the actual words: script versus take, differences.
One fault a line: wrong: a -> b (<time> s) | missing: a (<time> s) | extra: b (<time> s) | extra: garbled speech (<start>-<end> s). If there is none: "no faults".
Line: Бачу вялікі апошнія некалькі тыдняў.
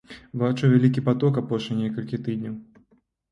extra: паток (1.1 s)